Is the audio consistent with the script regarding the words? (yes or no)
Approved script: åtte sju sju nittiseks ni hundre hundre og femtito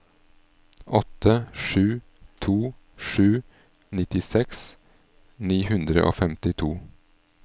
no